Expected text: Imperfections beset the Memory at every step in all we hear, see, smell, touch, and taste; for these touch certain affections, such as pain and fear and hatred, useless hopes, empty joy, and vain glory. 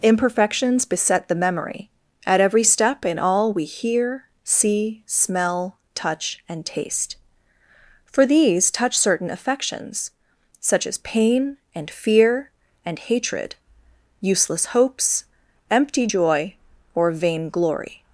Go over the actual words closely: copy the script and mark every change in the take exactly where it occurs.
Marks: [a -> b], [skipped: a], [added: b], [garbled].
Imperfections beset the Memory at every step in all we hear, see, smell, touch, and taste; for these touch certain affections, such as pain and fear and hatred, useless hopes, empty joy, [and -> or] vain glory.